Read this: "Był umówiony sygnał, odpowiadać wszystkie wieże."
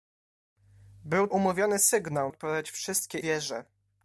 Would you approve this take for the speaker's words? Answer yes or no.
yes